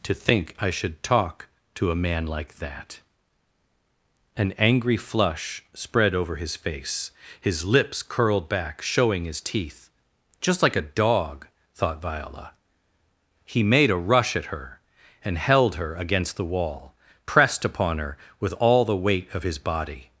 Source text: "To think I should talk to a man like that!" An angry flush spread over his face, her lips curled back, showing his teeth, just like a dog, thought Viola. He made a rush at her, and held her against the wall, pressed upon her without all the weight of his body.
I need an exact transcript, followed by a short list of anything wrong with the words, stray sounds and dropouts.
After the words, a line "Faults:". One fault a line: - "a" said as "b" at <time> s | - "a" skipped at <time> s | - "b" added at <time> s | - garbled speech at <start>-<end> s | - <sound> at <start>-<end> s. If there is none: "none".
"To think I should talk to a man like that!" An angry flush spread over his face, his lips curled back, showing his teeth, just like a dog, thought Viola. He made a rush at her, and held her against the wall, pressed upon her with all the weight of his body.
Faults:
- "her" said as "his" at 7.4 s
- "without" said as "with" at 18.4 s